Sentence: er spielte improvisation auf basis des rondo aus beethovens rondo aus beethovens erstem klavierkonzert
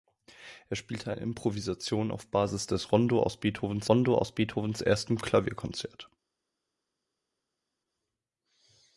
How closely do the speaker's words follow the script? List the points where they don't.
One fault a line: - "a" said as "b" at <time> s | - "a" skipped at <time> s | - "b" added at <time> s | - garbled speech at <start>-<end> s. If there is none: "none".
none